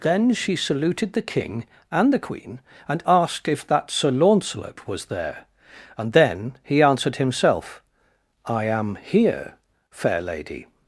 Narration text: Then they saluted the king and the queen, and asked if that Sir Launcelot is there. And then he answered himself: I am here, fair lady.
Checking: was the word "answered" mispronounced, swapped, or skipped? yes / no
no